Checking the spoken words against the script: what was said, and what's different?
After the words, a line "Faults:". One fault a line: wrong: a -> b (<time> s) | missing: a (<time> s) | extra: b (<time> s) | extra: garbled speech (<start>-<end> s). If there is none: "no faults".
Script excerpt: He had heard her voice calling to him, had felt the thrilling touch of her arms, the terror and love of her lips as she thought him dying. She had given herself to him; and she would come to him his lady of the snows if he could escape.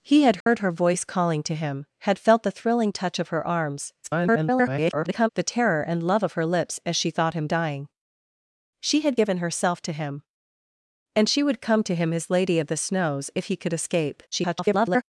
He had heard her voice calling to him, had felt the thrilling touch of her arms, [garbled] the terror and love of her lips as she thought him dying. She had given herself to him; and she would come to him his lady of the snows if he could escape. [garbled]
Faults:
extra: garbled speech (4.0-5.3 s)
extra: garbled speech (14.3-15.0 s)